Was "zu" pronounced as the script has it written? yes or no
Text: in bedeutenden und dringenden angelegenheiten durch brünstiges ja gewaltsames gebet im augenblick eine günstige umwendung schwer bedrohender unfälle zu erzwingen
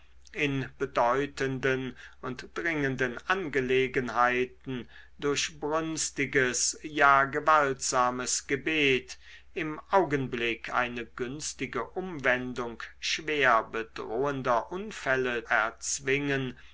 no